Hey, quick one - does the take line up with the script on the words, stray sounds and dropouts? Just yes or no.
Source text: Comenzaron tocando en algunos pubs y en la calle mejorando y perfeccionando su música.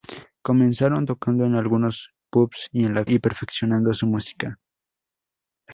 no